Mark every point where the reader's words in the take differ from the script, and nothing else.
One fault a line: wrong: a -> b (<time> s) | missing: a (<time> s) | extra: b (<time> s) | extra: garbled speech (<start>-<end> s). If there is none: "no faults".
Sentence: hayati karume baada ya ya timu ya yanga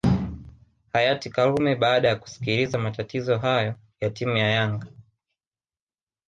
extra: kusikiliza matatizo hayo (2.1 s)